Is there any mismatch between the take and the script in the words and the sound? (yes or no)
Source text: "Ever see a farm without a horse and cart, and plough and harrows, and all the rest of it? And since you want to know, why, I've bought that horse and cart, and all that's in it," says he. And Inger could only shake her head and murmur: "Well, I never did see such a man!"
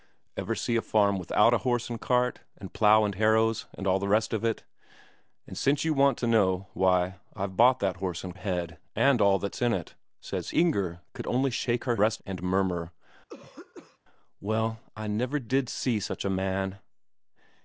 yes